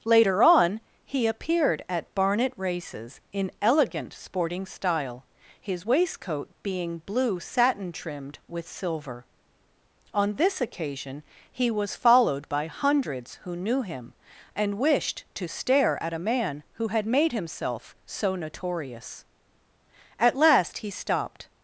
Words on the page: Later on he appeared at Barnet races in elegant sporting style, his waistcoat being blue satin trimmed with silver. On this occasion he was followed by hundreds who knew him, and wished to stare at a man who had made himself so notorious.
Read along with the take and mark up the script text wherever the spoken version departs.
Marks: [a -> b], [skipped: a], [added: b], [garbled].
Later on he appeared at Barnet races in elegant sporting style, his waistcoat being blue satin trimmed with silver. On this occasion he was followed by hundreds who knew him, and wished to stare at a man who had made himself so notorious. [added: At last he stopped]